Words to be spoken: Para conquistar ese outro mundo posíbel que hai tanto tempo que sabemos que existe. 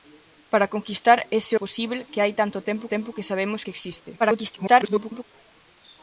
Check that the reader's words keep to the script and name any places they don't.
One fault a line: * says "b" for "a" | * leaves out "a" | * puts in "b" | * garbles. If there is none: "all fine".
* leaves out "outro mundo"
* puts in "tempo"
* garbles